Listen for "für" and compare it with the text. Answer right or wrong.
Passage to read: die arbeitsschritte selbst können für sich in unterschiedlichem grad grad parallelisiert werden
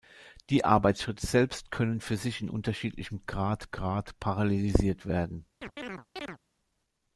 right